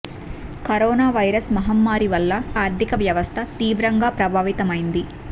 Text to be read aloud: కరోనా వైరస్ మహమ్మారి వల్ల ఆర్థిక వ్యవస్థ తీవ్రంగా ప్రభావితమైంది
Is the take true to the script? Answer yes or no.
yes